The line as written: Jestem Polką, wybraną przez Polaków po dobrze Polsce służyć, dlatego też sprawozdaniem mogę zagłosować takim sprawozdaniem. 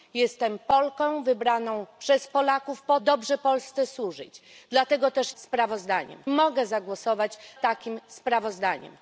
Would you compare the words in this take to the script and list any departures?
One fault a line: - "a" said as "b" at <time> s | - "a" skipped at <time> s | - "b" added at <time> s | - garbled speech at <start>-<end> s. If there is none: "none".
none